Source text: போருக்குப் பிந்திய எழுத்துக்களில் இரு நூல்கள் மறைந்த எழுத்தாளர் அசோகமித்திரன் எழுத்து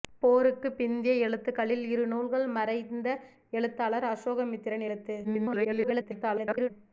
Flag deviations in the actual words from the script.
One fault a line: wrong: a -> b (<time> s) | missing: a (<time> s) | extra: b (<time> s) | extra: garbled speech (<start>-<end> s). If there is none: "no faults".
extra: garbled speech (5.2-6.7 s)